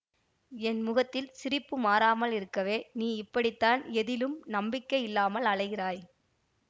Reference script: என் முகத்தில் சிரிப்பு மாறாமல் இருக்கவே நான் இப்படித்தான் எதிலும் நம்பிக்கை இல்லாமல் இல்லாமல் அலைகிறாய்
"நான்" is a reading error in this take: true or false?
true